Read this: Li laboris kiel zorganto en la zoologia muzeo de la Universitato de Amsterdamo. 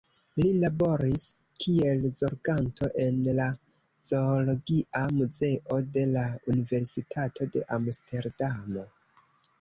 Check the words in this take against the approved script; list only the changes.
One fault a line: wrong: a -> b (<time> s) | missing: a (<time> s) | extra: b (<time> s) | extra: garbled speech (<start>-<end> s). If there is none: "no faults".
no faults